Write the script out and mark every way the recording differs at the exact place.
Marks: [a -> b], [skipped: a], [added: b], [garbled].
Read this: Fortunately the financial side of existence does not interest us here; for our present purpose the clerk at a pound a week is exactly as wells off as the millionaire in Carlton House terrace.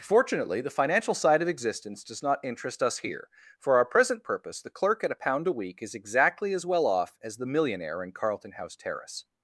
Fortunately the financial side of existence does not interest us here; for our present purpose the clerk at a pound a week is exactly as [wells -> well] off as the millionaire in Carlton House terrace.